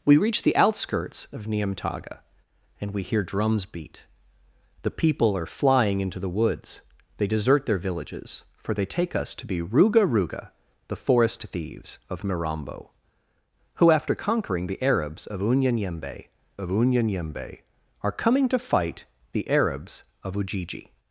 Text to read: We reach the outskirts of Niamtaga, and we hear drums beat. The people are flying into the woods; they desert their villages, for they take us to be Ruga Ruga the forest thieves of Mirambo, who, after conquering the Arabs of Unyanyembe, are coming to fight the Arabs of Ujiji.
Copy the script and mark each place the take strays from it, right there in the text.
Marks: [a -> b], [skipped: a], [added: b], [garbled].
We reach the outskirts of Niamtaga, and we hear drums beat. The people are flying into the woods; they desert their villages, for they take us to be Ruga Ruga the forest thieves of Mirambo, who, after conquering the Arabs of Unyanyembe, [added: of Unyanyembe] are coming to fight the Arabs of Ujiji.